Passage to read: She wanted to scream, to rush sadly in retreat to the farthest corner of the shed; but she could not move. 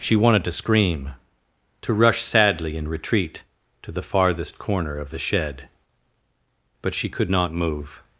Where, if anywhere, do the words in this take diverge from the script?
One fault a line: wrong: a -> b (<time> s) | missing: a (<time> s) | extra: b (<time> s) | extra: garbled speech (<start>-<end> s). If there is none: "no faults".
no faults